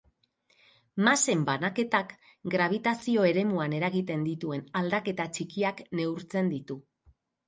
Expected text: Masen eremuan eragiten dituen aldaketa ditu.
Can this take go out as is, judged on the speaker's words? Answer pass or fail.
fail